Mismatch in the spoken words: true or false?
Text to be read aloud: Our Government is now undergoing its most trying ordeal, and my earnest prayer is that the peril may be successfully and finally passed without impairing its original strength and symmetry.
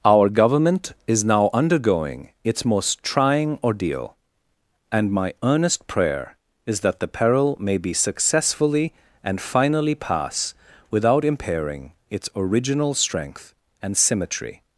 true